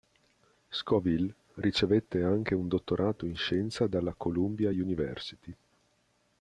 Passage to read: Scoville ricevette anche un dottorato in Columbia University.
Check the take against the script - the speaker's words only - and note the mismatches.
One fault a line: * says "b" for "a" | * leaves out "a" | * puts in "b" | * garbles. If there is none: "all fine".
* puts in "Scienza dalla"